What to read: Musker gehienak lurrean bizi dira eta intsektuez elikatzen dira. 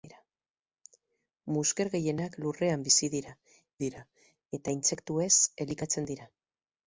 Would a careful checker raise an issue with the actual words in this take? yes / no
yes